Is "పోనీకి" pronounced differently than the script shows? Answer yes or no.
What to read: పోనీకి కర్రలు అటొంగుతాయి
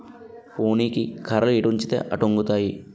no